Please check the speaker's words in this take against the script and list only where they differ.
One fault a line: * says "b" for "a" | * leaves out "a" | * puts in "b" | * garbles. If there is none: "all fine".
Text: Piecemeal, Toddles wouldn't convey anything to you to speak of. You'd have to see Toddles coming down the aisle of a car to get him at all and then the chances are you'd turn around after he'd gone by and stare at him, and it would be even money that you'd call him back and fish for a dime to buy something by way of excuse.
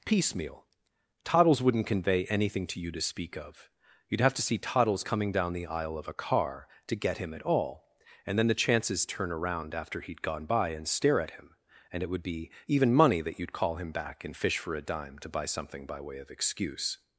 * leaves out "are you'd"